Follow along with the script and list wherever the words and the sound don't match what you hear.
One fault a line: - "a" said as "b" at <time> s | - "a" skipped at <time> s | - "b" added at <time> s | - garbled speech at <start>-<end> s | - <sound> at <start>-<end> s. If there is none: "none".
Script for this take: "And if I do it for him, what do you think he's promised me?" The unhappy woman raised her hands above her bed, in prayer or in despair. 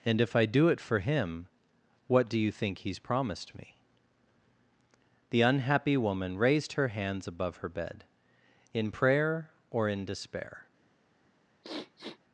- sniff at 11.6-12.2 s